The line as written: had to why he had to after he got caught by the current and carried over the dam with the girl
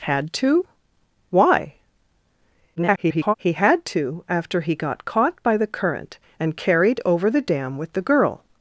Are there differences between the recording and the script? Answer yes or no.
yes